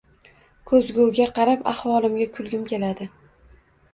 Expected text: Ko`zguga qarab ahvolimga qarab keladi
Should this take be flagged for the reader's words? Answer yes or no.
yes